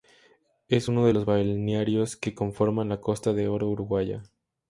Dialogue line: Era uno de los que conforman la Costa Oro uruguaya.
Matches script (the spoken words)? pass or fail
fail